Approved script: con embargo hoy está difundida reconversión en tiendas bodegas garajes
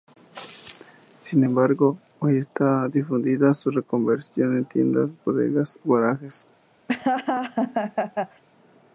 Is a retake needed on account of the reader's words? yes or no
yes